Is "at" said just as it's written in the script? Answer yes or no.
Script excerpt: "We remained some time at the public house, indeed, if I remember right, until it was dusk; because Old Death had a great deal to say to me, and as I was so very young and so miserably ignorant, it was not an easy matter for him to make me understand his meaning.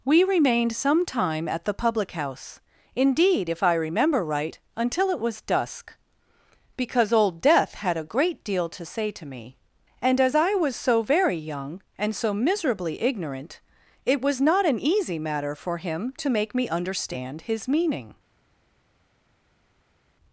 yes